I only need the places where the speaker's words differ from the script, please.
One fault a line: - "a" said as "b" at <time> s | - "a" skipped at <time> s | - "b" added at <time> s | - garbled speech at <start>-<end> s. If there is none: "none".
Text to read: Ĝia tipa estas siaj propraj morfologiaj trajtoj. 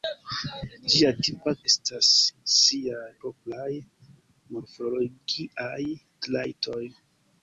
none